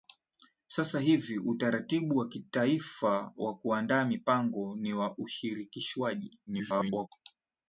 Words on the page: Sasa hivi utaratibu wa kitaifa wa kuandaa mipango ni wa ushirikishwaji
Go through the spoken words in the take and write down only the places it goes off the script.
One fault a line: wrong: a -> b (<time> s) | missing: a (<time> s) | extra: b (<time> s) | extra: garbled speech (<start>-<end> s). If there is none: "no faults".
extra: garbled speech (6.5-7.1 s)